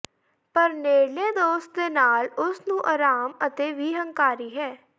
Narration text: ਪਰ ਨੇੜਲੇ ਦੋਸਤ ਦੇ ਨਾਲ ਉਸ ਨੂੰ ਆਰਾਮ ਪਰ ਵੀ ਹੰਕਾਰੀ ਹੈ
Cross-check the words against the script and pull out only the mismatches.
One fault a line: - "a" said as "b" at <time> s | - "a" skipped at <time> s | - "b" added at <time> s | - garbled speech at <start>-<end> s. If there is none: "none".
- "ਪਰ" said as "ਅਤੇ" at 3.5 s